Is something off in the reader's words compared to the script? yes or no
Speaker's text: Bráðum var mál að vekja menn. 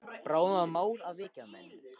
no